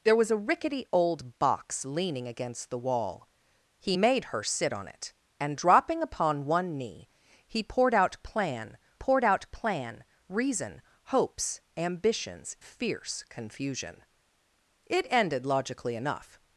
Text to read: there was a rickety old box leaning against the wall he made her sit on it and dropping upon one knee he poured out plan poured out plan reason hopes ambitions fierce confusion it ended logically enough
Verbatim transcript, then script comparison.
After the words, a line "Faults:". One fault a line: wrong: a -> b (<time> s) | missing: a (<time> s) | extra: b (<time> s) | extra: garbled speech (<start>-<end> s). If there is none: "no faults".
there was a rickety old box leaning against the wall he made her sit on it and dropping upon one knee he poured out plan poured out plan reason hopes ambitions fierce confusion it ended logically enough
Faults:
no faults